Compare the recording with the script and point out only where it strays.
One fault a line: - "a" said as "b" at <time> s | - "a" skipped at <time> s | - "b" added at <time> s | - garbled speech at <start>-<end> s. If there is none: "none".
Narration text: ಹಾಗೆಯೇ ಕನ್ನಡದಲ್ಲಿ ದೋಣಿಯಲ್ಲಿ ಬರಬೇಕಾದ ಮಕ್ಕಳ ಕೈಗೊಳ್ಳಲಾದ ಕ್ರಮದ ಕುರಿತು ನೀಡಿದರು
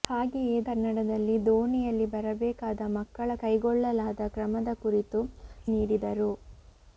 none